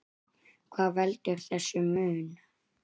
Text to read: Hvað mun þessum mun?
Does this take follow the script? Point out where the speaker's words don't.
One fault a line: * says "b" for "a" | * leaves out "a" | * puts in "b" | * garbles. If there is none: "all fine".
* says "veldur" for "mun"